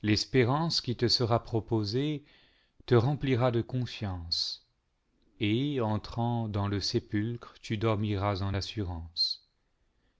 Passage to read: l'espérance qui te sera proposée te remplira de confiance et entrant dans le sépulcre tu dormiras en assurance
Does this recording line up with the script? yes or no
yes